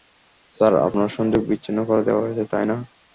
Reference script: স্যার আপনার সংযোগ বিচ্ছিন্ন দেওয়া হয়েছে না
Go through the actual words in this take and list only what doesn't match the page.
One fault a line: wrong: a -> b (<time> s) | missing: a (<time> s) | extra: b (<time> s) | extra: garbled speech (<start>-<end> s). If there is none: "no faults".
extra: করে (1.9 s)
extra: তাই (2.5 s)